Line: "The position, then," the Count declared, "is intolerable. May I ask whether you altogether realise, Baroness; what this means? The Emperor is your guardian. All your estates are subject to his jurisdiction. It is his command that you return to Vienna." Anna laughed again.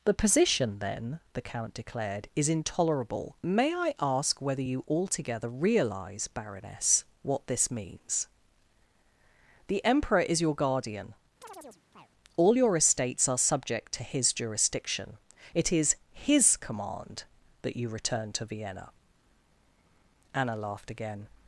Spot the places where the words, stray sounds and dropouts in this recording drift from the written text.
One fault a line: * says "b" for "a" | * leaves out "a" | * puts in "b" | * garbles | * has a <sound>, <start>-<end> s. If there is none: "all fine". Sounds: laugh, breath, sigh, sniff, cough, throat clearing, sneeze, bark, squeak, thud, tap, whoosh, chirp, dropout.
* has a chirp, 11.4-12.1 s